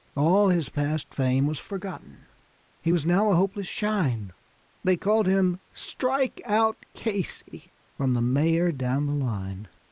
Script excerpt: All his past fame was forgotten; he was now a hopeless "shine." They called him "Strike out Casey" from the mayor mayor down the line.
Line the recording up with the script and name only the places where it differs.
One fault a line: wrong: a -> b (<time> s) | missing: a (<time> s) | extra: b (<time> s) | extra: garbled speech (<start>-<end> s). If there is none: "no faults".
missing: mayor (8.7 s)